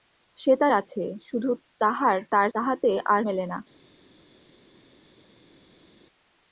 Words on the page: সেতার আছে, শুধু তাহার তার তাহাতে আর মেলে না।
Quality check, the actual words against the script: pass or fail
pass